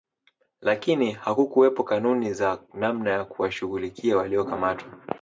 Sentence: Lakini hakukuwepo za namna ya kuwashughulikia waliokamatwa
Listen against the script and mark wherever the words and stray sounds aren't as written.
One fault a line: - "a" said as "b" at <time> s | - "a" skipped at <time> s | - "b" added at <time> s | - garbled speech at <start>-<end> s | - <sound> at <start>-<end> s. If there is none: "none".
- "kanuni" added at 1.8 s